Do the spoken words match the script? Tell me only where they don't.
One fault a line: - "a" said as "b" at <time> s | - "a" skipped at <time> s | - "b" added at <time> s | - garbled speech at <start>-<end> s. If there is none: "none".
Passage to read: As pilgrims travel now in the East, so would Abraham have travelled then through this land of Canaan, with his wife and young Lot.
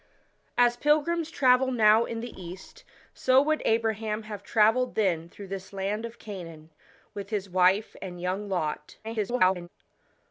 - garbled speech at 9.0-9.7 s